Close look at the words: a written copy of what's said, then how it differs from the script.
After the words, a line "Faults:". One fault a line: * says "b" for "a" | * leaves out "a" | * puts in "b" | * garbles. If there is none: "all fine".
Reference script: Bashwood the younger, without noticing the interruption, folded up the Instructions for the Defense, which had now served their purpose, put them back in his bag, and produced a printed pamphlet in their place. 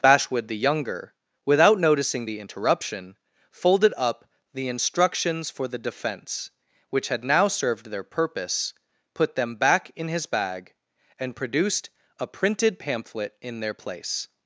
Bashwood the younger, without noticing the interruption, folded up the Instructions for the Defense, which had now served their purpose, put them back in his bag, and produced a printed pamphlet in their place.
Faults:
all fine